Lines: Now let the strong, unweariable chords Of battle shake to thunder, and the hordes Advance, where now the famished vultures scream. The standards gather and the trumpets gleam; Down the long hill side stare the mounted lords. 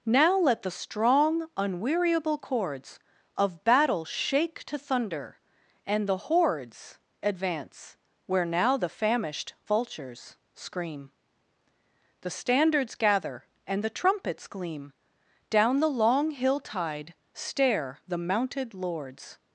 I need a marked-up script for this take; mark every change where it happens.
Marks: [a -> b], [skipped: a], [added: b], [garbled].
Now let the strong, unweariable chords Of battle shake to thunder, and the hordes Advance, where now the famished vultures scream. The standards gather and the trumpets gleam; Down the long hill [side -> tide] stare the mounted lords.